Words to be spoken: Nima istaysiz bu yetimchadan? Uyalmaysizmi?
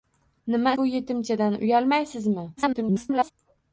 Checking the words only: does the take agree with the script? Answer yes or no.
no